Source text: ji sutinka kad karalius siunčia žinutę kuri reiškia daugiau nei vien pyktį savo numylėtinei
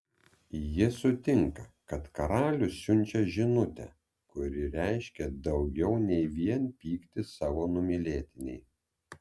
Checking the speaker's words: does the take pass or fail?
pass